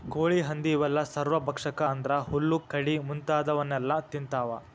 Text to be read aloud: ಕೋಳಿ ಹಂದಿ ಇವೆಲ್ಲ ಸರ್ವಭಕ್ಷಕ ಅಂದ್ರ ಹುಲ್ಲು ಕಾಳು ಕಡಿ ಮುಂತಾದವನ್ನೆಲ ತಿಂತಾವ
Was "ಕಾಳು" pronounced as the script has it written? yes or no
no